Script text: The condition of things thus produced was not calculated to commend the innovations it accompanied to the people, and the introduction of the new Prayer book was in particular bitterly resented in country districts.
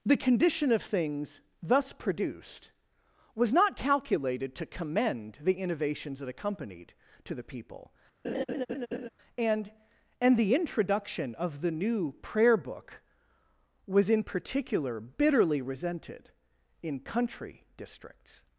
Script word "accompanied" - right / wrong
right